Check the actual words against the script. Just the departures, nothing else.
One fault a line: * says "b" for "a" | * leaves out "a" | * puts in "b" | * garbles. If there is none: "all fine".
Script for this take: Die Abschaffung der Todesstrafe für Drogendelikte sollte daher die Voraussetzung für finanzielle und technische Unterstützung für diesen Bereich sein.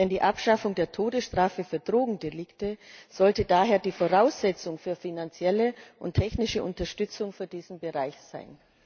all fine